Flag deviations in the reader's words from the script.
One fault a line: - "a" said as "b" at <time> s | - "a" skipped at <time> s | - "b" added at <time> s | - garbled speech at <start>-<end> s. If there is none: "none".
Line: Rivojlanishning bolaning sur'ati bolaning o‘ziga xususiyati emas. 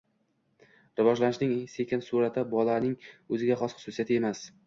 - "bolaning" said as "sekin" at 1.8 s
- "xos" added at 3.6 s